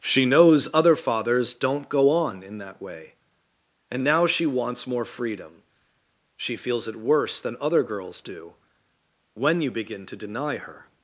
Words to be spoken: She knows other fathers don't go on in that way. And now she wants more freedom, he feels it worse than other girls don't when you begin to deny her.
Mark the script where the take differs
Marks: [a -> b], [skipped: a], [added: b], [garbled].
She knows other fathers don't go on in that way. And now she wants more freedom, [he -> she] feels it worse than other girls [don't -> do] when you begin to deny her.